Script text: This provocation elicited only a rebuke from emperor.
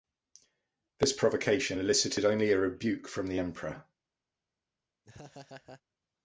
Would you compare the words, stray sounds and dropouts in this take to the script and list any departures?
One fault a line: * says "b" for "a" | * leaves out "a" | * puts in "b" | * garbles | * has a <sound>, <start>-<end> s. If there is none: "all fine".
* puts in "the"
* has a laugh, 5.0-5.8 s